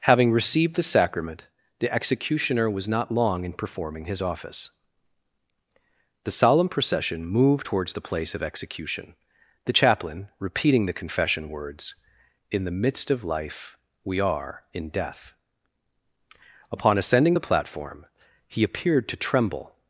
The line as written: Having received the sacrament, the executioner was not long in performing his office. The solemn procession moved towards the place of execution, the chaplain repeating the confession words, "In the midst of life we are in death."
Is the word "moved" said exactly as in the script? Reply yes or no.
yes